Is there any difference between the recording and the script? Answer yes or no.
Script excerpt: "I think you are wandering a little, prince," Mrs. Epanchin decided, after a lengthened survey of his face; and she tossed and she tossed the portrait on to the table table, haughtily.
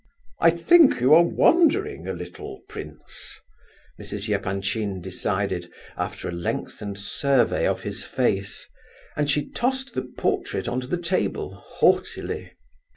yes